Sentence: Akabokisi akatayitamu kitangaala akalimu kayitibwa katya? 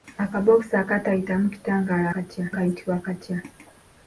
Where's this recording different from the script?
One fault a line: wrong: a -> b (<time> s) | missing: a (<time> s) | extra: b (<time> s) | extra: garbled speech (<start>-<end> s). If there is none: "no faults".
wrong: akalimu -> katya (2.1 s)